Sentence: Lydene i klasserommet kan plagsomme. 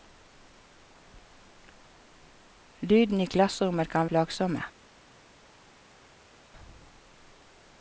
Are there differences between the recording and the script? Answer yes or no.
no